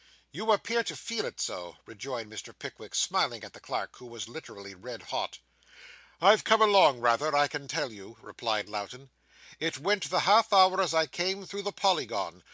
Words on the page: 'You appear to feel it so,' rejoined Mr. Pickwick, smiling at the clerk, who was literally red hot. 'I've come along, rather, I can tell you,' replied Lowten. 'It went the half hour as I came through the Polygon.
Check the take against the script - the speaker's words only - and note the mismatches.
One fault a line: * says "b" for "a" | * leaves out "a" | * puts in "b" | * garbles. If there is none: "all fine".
all fine